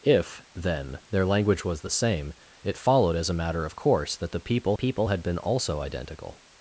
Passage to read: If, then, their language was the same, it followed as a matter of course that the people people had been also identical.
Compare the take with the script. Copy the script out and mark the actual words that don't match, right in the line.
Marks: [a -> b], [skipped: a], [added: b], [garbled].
If, then, their language was the same, it followed as a matter of course that the people people had been also identical.